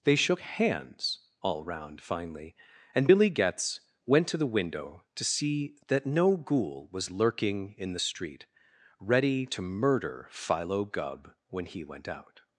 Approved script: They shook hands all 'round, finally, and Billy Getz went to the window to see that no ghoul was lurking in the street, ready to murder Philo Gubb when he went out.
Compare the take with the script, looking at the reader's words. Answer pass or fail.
pass